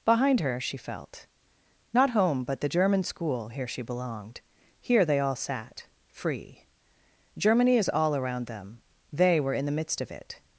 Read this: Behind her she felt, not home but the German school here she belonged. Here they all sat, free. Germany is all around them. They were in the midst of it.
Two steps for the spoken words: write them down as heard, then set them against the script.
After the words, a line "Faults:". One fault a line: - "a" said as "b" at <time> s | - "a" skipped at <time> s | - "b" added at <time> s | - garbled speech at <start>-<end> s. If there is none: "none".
Behind her she felt, not home but the German school here she belonged. Here they all sat, free. Germany is all around them. They were in the midst of it.
Faults:
none